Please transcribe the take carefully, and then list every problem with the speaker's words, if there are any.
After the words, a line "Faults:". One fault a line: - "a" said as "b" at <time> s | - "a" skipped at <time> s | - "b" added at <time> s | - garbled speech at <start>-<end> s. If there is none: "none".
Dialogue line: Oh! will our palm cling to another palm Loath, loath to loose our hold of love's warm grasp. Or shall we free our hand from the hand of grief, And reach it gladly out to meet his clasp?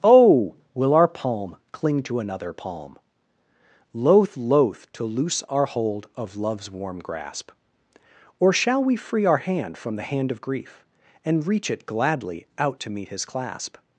Oh! will our palm cling to another palm Loath, loath to loose our hold of love's warm grasp. Or shall we free our hand from the hand of grief, And reach it gladly out to meet his clasp?
Faults:
none